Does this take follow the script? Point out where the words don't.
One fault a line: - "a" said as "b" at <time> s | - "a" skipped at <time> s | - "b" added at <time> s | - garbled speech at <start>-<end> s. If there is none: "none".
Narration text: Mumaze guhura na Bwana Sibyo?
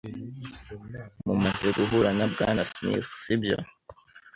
- "Smith" added at 2.7 s